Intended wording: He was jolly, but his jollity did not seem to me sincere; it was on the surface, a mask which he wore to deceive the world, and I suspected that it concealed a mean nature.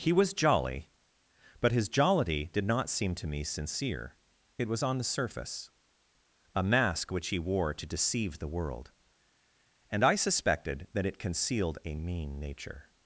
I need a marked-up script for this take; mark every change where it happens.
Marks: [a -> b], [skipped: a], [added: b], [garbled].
He was jolly, but his jollity did not seem to me sincere; it was on the surface, a mask which he wore to deceive the world, and I suspected that it concealed a mean nature.